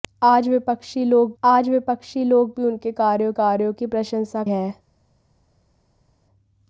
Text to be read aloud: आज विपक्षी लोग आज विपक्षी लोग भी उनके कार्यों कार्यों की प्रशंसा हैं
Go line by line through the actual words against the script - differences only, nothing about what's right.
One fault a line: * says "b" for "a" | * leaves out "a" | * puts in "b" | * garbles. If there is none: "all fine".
all fine